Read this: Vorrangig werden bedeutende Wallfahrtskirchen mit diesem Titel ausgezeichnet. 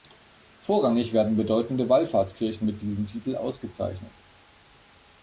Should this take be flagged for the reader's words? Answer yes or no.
no